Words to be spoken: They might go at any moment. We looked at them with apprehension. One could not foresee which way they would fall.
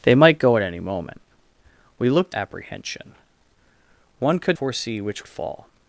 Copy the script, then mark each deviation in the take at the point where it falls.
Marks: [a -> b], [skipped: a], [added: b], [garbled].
They might go at any moment. We looked [skipped: at them with] apprehension. One could [skipped: not] foresee which [skipped: way they would] fall.